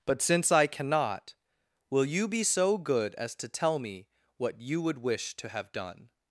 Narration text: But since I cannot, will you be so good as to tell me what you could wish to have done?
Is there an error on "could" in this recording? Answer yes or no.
yes